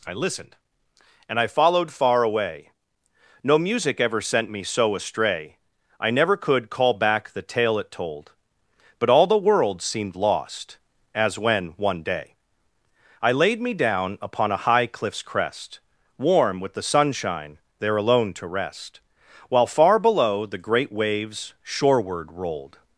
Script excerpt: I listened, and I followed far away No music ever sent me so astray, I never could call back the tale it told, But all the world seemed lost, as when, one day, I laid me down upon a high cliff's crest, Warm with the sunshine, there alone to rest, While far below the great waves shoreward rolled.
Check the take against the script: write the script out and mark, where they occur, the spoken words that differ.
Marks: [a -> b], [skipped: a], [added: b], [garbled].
I listened, and I followed far away No music ever sent me so astray, I never could call back the tale it told, But all the world seemed lost, as when, one day, I laid me down upon a high cliff's crest, Warm with the sunshine, there alone to rest, While far below the great waves shoreward rolled.